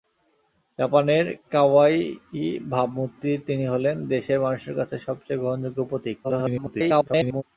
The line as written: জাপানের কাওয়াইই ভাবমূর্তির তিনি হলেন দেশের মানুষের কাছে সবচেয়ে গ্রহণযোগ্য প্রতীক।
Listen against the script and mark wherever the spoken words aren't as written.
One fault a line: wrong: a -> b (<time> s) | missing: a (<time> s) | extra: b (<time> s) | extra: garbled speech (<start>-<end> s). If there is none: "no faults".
extra: garbled speech (6.2-7.4 s)